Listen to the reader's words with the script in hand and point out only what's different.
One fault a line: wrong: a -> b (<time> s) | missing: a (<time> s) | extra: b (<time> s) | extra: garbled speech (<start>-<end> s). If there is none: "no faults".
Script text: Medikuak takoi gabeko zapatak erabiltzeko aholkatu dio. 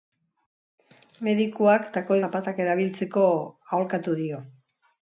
missing: gabeko (2.2 s)